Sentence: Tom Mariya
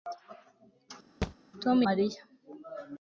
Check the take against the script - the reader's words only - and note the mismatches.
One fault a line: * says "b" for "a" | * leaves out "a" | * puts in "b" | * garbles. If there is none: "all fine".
all fine